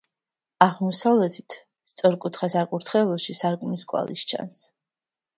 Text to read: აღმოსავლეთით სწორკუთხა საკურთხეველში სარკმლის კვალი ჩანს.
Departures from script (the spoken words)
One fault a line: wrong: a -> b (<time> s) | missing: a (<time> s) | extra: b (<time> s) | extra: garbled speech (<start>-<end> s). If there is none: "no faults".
no faults